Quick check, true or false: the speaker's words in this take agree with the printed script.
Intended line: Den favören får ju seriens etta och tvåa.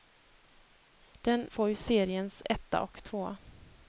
false